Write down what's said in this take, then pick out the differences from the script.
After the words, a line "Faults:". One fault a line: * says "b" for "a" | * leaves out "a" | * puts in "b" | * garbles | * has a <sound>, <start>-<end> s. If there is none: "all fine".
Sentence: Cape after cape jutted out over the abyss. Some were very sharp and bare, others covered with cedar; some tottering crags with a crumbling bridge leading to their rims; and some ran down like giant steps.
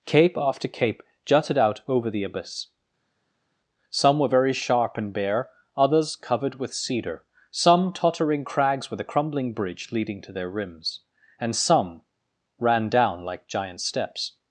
Cape after cape jutted out over the abyss. Some were very sharp and bare, others covered with cedar; some tottering crags with a crumbling bridge leading to their rims; and some ran down like giant steps.
Faults:
all fine